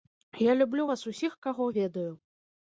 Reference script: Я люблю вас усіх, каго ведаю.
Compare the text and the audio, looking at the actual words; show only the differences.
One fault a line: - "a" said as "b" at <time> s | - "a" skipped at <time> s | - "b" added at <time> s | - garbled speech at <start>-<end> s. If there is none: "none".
none